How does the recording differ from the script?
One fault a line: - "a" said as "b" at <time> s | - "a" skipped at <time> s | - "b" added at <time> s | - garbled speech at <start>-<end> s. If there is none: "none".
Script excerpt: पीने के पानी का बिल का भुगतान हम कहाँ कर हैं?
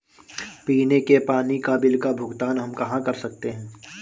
- "सकते" added at 3.1 s